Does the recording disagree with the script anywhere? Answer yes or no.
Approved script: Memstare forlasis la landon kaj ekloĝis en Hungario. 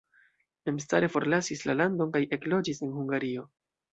no